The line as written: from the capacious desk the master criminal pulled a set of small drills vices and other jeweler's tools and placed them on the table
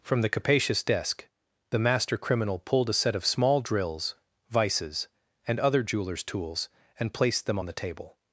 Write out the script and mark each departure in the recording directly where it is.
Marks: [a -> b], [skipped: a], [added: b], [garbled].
from the capacious desk the master criminal pulled a set of small drills vices and other jeweler's tools and placed them on the table